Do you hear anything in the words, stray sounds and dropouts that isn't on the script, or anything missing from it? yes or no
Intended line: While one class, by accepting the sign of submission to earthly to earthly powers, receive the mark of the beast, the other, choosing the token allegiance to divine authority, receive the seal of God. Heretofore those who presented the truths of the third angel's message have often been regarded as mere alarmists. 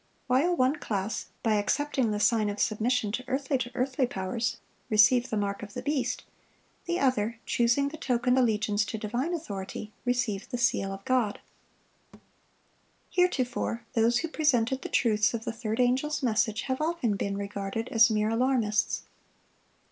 yes